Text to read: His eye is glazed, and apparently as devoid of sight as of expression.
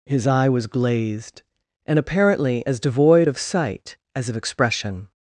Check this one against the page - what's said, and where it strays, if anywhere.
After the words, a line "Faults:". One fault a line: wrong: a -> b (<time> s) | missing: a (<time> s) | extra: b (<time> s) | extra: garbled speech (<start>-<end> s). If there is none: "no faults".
His eye was glazed, and apparently as devoid of sight as of expression.
Faults:
wrong: is -> was (0.5 s)